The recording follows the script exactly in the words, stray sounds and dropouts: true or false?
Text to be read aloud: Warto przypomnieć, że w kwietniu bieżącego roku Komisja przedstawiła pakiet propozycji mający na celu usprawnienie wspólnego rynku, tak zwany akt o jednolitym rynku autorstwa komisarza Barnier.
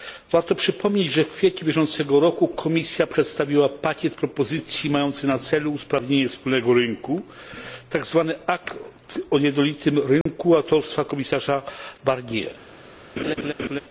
false